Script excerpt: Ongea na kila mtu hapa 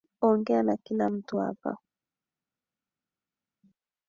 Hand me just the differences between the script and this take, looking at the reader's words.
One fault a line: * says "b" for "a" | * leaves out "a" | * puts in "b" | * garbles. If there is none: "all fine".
all fine